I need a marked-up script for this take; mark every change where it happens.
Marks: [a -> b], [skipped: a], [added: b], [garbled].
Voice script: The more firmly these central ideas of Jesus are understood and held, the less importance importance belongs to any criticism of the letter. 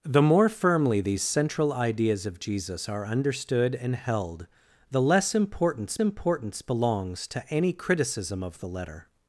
The more firmly these central ideas of Jesus are understood and held, the less importance importance belongs to any criticism of the letter.